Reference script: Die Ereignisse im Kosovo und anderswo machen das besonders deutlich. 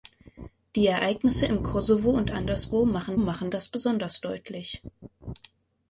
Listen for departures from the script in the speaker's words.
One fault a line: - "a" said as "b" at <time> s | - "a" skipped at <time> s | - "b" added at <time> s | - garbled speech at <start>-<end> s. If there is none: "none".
- "machen" added at 3.2 s